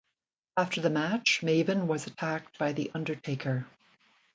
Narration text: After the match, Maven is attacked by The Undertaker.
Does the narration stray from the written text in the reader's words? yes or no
yes